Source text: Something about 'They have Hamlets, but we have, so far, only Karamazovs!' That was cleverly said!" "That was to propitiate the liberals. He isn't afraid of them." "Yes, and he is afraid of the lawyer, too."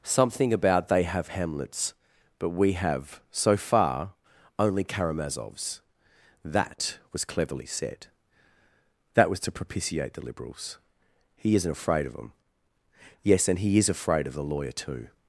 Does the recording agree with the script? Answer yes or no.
yes